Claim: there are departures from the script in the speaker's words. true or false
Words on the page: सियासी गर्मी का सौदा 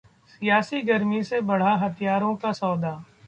true